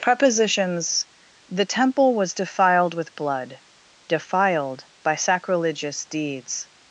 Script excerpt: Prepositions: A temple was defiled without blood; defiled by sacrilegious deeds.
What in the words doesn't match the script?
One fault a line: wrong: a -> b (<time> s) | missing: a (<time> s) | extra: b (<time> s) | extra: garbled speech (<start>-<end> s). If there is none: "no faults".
wrong: A -> The (1.5 s)
wrong: without -> with (3.0 s)